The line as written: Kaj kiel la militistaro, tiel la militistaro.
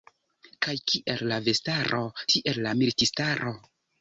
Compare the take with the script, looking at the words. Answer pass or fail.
fail